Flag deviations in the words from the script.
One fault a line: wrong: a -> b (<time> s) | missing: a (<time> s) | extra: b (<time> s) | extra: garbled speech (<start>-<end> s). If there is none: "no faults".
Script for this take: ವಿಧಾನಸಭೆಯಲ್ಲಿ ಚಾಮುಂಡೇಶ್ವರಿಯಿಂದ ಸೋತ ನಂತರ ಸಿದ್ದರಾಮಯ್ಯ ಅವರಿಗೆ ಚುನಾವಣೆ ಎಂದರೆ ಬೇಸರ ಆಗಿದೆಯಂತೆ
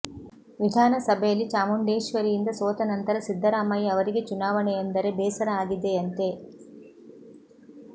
no faults